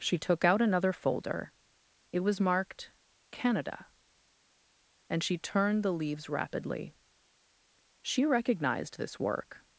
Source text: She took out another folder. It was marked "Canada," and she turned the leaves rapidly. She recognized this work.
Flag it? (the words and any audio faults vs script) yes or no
no